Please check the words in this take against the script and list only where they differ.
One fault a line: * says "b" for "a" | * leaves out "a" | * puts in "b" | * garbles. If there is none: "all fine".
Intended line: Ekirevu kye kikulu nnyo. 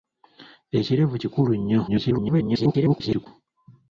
* leaves out "kye"
* garbles